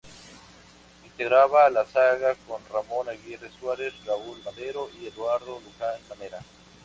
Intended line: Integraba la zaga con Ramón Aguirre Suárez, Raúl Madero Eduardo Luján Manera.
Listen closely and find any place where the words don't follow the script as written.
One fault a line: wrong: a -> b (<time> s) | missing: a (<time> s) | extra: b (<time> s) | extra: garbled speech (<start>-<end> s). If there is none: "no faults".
extra: y (4.9 s)